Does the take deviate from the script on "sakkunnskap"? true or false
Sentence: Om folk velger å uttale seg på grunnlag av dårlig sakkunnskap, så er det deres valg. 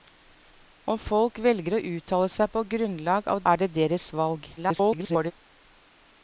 true